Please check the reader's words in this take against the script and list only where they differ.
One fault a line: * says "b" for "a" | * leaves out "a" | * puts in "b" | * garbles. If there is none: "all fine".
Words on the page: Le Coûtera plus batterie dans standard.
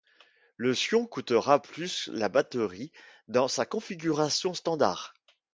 * puts in "Sion"
* puts in "la"
* puts in "sa configuration"